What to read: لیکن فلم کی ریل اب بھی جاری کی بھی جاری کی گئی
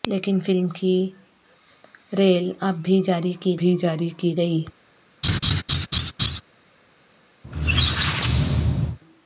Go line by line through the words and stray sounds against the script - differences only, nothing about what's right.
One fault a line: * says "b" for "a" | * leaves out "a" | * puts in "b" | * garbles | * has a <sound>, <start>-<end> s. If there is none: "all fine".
* has a laugh, 5.2-6.4 s
* has a squeak, 7.4-9.0 s